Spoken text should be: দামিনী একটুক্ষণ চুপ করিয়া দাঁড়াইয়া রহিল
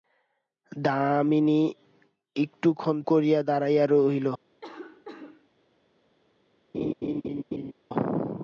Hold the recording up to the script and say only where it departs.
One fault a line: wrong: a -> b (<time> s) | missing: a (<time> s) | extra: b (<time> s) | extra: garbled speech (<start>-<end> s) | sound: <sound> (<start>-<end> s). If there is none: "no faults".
missing: চুপ (3.0 s)
sound: cough (4.6-5.5 s)
sound: laugh (6.7-7.7 s)